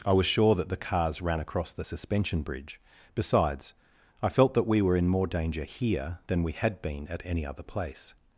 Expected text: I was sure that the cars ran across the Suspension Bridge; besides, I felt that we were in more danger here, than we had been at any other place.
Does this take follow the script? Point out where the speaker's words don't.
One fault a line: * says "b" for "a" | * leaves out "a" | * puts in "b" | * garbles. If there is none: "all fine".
all fine